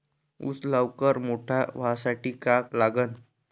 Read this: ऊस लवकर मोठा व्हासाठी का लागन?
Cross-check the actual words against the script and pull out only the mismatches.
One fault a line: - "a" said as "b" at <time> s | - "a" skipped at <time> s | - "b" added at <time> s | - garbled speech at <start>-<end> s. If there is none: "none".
none